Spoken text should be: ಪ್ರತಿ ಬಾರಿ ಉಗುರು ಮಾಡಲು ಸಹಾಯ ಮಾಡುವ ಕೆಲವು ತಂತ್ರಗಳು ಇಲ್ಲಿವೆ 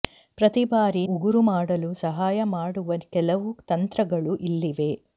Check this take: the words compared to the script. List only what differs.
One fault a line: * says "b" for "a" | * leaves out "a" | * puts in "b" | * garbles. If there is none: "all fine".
all fine